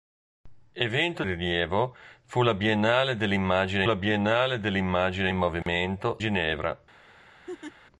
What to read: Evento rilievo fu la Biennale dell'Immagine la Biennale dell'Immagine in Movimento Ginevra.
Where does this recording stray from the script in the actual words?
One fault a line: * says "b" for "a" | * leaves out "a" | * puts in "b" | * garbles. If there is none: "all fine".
all fine